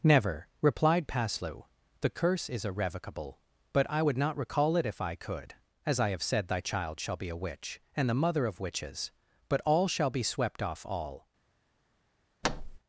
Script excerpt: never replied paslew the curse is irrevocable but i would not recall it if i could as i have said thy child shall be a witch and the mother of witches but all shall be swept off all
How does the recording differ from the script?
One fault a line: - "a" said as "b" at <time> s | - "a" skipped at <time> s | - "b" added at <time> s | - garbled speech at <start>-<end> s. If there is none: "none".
none